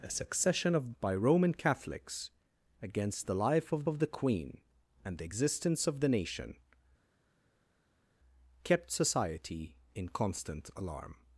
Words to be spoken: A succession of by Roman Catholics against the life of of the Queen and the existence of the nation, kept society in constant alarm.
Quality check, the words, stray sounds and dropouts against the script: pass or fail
pass